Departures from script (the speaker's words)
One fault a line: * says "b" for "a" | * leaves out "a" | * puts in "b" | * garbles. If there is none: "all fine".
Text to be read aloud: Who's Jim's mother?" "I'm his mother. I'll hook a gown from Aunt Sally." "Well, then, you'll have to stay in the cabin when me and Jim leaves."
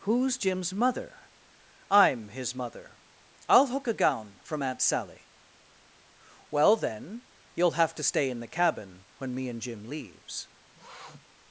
all fine